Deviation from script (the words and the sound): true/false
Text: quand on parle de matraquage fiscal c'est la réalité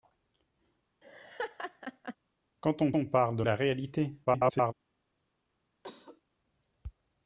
true